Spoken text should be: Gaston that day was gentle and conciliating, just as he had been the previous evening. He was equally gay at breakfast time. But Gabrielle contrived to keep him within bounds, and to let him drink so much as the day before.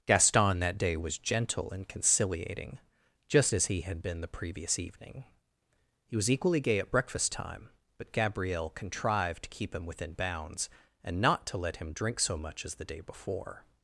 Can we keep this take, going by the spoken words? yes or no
no